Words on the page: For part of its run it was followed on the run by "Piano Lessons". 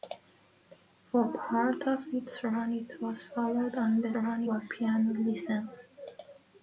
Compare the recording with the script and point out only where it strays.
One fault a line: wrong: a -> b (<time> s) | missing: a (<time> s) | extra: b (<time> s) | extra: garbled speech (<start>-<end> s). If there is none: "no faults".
no faults